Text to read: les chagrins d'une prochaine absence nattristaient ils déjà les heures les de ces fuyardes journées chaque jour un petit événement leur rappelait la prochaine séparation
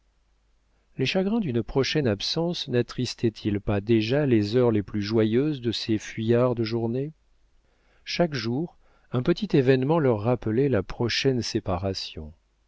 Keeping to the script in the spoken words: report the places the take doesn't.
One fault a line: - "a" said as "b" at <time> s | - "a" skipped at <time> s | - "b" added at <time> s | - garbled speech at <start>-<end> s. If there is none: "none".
- "pas" added at 3.6 s
- "plus joyeuses" added at 4.8 s